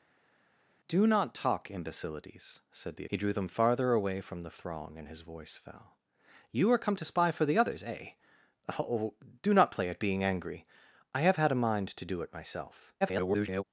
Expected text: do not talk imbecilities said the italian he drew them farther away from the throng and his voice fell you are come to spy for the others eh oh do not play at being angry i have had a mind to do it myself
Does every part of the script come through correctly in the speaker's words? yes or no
no